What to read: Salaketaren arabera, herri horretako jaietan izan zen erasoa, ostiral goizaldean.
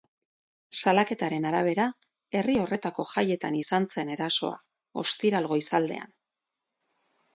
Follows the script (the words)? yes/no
yes